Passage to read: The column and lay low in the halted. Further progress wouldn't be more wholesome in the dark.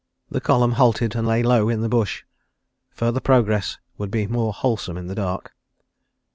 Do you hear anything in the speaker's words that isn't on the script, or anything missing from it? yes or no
yes